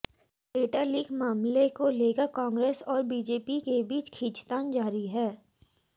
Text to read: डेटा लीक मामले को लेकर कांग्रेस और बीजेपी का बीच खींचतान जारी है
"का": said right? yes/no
no